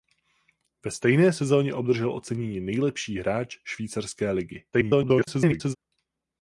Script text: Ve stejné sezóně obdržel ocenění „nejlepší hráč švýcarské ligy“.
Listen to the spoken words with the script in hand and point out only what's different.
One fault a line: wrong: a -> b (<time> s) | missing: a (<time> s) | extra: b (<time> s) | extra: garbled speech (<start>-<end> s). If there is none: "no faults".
extra: garbled speech (4.7-5.8 s)